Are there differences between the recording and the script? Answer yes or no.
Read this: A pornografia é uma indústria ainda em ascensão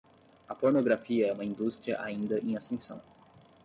no